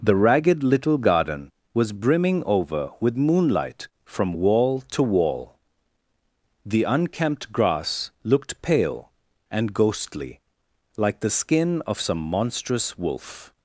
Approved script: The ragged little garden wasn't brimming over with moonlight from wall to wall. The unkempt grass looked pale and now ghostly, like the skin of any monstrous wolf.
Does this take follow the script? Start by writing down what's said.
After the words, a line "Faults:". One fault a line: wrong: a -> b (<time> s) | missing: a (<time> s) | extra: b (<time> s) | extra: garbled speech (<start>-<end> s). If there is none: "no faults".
The ragged little garden was brimming over with moonlight from wall to wall. The unkempt grass looked pale and ghostly, like the skin of some monstrous wolf.
Faults:
wrong: wasn't -> was (1.8 s)
missing: now (9.7 s)
wrong: any -> some (12.0 s)